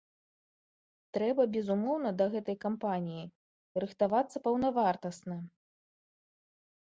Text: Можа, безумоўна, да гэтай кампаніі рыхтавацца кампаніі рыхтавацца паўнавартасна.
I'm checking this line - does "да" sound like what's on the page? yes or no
yes